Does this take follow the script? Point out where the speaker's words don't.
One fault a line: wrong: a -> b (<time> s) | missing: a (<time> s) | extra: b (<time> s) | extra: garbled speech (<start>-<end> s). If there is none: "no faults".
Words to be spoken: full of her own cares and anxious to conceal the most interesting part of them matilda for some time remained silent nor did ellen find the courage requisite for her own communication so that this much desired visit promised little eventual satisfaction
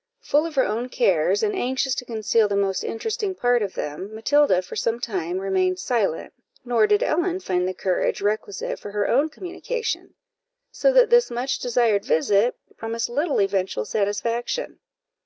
no faults